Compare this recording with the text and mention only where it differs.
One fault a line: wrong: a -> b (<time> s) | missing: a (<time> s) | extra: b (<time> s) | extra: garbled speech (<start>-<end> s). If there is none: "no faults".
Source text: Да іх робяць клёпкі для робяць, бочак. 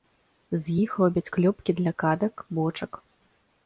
wrong: Да -> З (0.6 s)
wrong: робяць -> кадак (2.0 s)